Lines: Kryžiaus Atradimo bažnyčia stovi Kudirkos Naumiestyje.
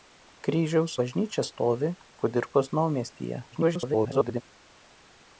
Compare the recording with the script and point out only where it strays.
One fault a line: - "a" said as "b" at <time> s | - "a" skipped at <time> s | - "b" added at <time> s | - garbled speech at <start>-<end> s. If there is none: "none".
- "Atradimo" skipped at 0.9 s
- garbled speech at 3.5-4.4 s